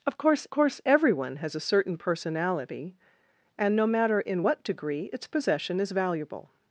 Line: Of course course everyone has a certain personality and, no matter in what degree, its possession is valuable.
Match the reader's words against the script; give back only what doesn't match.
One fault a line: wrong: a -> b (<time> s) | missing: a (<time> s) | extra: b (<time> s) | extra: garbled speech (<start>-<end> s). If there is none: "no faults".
no faults